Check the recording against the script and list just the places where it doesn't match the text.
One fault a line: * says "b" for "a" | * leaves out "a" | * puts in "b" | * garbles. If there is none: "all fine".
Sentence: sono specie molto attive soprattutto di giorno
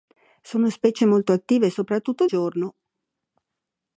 * leaves out "di"